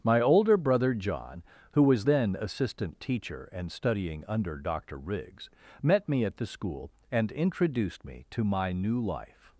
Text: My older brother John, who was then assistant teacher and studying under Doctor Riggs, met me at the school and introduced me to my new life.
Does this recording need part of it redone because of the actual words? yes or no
no